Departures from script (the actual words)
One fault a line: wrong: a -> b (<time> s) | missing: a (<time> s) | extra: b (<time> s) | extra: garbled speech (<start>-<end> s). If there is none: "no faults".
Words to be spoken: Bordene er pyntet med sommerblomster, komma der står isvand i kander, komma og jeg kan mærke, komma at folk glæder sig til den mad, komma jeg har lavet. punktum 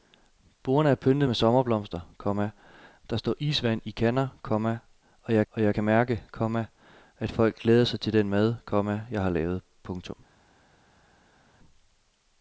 extra: og jeg (5.5 s)